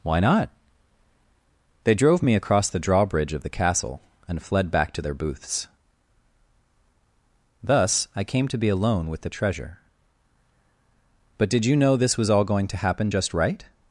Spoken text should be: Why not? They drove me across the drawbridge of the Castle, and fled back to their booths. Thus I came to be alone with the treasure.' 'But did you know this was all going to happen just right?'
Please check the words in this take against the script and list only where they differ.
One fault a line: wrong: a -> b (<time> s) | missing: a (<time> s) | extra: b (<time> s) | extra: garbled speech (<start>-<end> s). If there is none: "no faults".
no faults